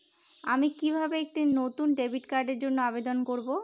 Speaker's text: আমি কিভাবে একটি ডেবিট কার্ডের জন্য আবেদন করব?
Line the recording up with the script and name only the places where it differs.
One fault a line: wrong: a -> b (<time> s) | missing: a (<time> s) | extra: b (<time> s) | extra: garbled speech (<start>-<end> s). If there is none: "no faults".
extra: নতুন (1.6 s)